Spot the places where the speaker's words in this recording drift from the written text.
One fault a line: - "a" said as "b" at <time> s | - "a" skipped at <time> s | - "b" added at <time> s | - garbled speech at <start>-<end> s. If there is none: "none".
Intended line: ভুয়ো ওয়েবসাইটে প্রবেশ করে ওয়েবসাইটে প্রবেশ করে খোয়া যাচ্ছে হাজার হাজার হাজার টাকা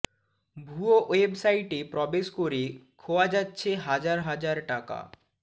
- "ওয়েবসাইটে প্রবেশ করে" skipped at 2.6 s
- "হাজার" skipped at 4.6 s